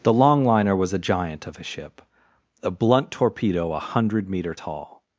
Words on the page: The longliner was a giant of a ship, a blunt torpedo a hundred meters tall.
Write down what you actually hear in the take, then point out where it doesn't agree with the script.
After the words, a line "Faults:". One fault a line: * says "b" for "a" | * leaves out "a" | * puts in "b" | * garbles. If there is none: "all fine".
The longliner was a giant of a ship, a blunt torpedo a hundred meter tall.
Faults:
* says "meter" for "meters"